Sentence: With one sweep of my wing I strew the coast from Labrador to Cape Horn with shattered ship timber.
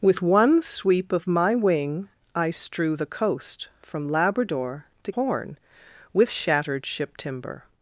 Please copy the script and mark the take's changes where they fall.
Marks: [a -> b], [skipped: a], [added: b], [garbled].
With one sweep of my wing I strew the coast from Labrador to [skipped: Cape] Horn with shattered ship timber.